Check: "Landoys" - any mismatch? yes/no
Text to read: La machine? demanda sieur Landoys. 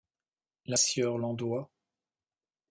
no